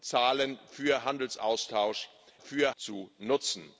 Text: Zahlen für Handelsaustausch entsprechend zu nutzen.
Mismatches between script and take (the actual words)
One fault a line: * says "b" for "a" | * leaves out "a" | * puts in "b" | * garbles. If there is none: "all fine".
* says "für" for "entsprechend"